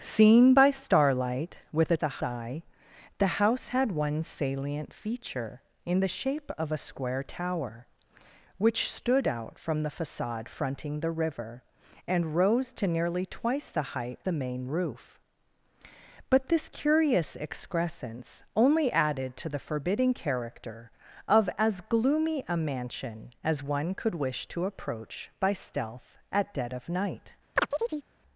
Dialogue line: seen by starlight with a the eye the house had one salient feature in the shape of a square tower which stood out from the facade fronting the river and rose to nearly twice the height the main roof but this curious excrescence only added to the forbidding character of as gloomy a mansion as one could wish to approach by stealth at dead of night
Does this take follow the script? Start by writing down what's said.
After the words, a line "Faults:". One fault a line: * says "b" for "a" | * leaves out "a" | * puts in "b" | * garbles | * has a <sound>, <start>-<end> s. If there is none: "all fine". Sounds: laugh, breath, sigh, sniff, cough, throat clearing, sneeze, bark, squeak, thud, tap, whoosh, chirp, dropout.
seen by starlight with a the eye the house had one salient feature in the shape of a square tower which stood out from the facade fronting the river and rose to nearly twice the height the main roof but this curious excrescence only added to the forbidding character of as gloomy a mansion as one could wish to approach by stealth at dead of night
Faults:
* has a chirp, 27.6-28.1 s